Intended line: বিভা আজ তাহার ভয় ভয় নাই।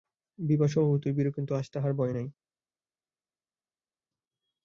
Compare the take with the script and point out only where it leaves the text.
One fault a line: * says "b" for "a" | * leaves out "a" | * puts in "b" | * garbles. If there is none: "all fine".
* puts in "স্বভাবতই ভীরু কিন্তু"
* leaves out "ভয়"